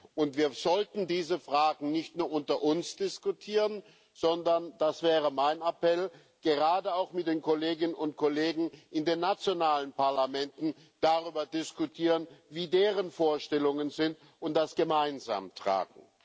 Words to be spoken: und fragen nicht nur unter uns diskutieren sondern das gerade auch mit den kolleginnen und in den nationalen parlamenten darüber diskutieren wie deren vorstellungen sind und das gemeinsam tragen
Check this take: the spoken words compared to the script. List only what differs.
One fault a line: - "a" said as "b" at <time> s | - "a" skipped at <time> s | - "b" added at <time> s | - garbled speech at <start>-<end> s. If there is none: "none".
- "wir sollten diese" added at 0.4 s
- "wäre mein appell" added at 5.0 s
- "kollegen" added at 8.1 s